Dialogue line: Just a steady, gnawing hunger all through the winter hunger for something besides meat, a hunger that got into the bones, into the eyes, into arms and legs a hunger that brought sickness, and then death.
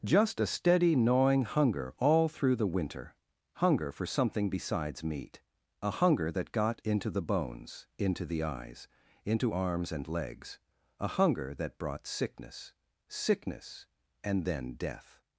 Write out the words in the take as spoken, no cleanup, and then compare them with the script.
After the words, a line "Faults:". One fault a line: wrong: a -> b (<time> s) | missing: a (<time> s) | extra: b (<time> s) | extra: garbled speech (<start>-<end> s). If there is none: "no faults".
Just a steady, gnawing hunger all through the winter hunger for something besides meat, a hunger that got into the bones, into the eyes, into arms and legs a hunger that brought sickness sickness, and then death.
Faults:
extra: sickness (13.1 s)